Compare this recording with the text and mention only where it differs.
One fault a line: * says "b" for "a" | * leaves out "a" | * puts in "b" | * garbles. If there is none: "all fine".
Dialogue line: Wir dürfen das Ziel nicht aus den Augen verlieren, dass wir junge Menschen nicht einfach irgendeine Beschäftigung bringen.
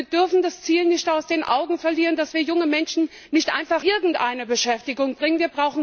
all fine